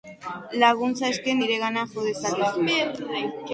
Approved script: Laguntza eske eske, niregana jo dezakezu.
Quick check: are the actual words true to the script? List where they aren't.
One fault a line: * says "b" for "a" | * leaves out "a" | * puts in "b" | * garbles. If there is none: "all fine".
* leaves out "eske"